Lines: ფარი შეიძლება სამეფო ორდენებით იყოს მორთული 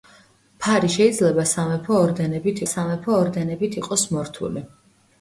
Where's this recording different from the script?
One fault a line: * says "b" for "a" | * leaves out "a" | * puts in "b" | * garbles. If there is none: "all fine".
* puts in "სამეფო ორდენებით"